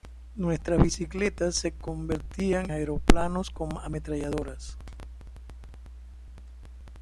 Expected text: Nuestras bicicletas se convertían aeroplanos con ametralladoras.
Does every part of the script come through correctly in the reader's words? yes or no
yes